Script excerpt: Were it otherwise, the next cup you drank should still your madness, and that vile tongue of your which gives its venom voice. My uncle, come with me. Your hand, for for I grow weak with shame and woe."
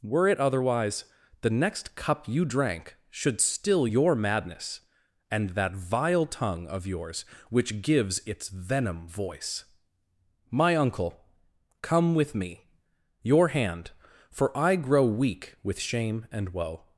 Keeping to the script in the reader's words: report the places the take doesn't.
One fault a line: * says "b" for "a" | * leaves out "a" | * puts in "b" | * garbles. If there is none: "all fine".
* says "yours" for "your"
* leaves out "for"